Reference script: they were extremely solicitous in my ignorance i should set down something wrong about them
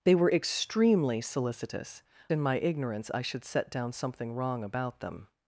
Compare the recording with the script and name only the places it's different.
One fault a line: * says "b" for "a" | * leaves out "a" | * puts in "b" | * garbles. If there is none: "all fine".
all fine